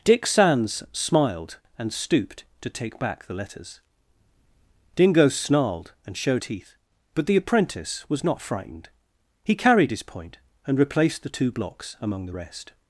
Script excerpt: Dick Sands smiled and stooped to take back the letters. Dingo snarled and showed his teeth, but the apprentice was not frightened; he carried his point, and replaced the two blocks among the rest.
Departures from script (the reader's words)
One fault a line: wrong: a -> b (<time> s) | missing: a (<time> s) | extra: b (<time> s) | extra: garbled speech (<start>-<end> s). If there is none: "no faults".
missing: his (6.4 s)